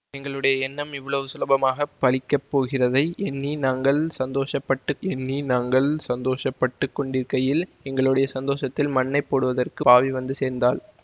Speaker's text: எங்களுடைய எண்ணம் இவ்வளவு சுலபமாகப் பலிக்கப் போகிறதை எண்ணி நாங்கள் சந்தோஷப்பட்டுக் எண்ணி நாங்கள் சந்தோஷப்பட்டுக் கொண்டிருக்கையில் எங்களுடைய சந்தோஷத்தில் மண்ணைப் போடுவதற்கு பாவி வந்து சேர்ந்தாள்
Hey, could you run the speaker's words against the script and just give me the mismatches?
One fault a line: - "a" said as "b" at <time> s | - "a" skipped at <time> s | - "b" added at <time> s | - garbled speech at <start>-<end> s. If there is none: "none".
none